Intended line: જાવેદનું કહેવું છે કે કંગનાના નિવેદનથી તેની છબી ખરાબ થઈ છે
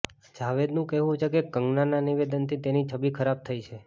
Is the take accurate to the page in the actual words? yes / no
yes